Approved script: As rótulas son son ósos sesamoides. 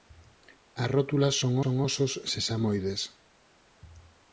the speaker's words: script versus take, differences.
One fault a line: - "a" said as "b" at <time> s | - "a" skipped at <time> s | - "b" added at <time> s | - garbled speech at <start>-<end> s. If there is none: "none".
none